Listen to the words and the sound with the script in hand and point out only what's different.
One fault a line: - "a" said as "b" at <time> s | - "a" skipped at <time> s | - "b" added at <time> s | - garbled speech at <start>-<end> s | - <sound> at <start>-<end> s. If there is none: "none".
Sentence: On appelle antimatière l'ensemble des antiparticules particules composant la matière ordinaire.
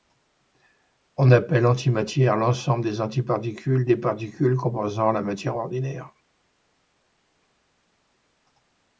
- "des" added at 3.9 s